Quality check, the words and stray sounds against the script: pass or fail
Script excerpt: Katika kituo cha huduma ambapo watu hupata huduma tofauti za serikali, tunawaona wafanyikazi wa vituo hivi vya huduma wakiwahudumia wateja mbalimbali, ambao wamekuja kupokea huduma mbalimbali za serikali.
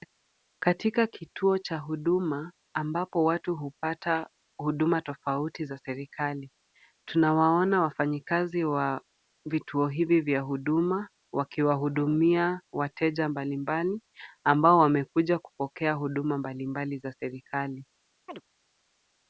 fail